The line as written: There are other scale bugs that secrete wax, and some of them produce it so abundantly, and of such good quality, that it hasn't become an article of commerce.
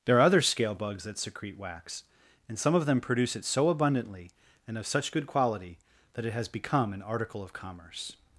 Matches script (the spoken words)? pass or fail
fail